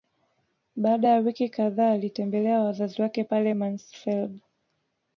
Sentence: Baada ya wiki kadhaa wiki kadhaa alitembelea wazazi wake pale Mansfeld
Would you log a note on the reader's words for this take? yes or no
yes